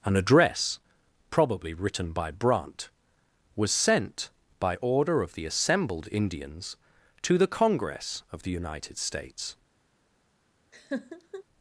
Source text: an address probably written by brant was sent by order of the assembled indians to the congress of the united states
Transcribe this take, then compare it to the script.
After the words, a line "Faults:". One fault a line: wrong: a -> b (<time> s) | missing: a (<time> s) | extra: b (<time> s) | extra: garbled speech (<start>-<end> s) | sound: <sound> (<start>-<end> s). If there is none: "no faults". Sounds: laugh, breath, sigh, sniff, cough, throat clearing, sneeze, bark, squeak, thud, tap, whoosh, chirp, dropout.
an address probably written by brant was sent by order of the assembled indians to the congress of the united states
Faults:
sound: laugh (10.7-11.4 s)